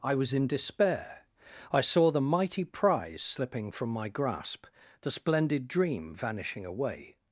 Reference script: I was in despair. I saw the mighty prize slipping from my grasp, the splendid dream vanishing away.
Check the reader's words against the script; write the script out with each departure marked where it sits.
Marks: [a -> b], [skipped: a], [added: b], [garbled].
I was in despair. I saw the mighty prize slipping from my grasp, the splendid dream vanishing away.